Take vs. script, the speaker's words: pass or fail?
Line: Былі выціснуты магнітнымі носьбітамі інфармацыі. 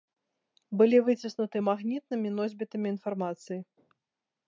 pass